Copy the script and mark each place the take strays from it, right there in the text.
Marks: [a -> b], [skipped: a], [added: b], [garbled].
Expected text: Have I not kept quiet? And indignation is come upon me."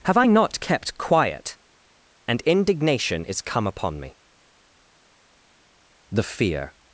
Have I not kept quiet? And indignation is come upon me." [added: The fear]